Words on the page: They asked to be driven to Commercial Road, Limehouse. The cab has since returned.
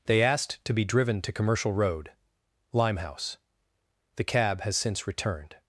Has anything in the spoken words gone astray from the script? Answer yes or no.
no